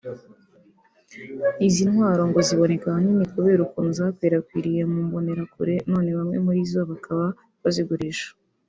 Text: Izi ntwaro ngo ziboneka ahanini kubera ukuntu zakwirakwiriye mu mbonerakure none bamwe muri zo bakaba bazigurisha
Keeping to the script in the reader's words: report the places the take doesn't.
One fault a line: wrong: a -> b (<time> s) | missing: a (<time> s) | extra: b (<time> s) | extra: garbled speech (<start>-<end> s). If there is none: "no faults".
no faults